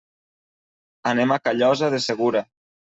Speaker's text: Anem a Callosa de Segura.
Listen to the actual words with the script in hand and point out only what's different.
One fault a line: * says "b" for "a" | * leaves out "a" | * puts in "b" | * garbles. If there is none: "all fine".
all fine